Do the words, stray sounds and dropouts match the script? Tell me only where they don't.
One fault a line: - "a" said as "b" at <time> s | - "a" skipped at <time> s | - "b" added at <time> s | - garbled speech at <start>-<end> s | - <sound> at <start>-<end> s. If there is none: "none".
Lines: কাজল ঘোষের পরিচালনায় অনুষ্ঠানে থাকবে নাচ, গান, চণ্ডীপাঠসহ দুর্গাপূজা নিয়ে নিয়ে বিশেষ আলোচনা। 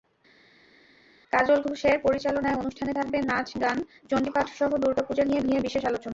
none